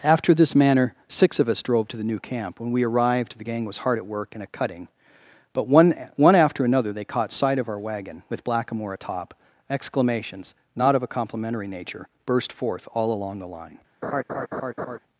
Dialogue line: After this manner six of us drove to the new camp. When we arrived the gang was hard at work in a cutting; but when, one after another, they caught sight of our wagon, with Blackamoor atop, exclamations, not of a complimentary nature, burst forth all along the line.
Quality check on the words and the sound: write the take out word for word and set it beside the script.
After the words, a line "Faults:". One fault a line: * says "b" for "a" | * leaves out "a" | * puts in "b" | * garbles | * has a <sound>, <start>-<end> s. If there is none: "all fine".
After this manner six of us drove to the new camp. When we arrived the gang was hard at work in a cutting; but one, one after another, they caught sight of our wagon, with Blackamoor atop, exclamations, not of a complimentary nature, burst forth all along the line.
Faults:
* says "one" for "when"
* has a laugh, 14.0-15.0 s